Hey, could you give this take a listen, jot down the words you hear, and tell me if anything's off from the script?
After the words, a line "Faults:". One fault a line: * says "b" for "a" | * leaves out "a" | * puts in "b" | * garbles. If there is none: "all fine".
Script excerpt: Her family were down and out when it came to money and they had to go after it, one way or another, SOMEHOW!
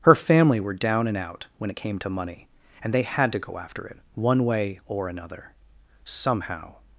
Her family were down and out when it came to money and they had to go after it, one way or another, SOMEHOW!
Faults:
all fine